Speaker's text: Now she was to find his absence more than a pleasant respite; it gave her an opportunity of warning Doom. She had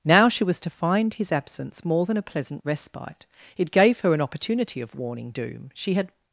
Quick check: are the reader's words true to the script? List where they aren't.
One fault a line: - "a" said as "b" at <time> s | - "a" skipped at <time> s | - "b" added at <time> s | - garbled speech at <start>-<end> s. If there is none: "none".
none